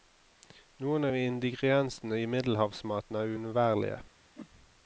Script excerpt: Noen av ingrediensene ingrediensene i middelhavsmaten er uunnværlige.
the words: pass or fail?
fail